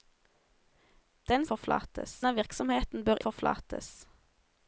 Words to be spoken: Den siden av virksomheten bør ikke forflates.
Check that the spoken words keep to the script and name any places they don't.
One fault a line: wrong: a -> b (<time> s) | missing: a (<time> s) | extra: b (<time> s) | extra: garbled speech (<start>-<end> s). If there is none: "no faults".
wrong: siden -> forflates (1.5 s)
missing: ikke (3.2 s)